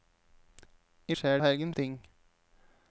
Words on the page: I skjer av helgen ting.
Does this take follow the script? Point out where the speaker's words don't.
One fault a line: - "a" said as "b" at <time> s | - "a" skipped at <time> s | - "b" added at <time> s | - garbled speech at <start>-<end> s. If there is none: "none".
none